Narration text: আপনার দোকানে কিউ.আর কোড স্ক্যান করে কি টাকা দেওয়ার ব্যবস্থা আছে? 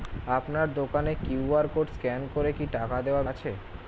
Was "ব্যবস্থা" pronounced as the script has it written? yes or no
no